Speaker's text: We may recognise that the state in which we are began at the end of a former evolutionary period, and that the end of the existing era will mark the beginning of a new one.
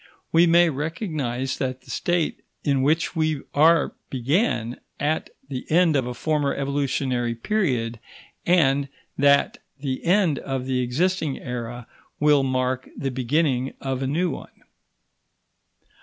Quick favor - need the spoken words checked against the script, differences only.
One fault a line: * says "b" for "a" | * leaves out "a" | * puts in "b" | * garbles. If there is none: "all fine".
all fine